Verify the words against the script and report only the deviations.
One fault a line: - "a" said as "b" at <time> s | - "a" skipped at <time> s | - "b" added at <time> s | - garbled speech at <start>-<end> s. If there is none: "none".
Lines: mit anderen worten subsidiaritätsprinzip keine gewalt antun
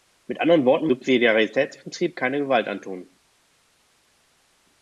none